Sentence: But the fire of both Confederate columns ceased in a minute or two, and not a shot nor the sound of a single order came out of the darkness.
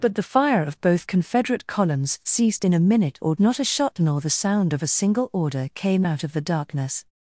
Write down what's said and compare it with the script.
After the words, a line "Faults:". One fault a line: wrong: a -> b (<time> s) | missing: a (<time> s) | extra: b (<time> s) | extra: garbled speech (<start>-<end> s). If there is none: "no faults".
But the fire of both Confederate columns ceased in a minute or not a shot nor the sound of a single order came out of the darkness.
Faults:
missing: two and (3.4 s)